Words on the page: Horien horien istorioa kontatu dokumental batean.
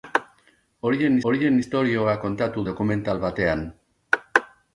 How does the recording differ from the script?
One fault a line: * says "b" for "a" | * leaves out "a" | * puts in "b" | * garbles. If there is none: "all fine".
all fine